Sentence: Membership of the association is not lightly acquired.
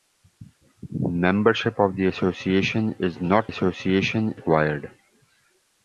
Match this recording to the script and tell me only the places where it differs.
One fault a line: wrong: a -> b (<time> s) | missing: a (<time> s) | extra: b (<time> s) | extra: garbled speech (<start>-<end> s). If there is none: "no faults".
wrong: lightly -> association (3.5 s)